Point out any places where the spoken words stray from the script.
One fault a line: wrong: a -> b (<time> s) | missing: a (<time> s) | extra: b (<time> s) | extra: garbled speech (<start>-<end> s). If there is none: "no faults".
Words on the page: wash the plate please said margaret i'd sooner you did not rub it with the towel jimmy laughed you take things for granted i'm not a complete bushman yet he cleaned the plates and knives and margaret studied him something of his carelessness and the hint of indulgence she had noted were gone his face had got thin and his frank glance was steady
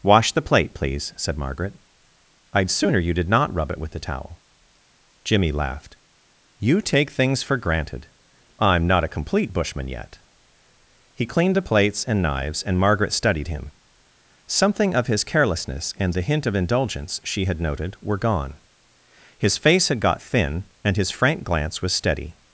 no faults